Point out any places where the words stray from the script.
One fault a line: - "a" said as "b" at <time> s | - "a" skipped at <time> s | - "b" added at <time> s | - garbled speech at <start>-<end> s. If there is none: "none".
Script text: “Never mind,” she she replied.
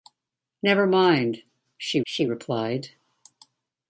none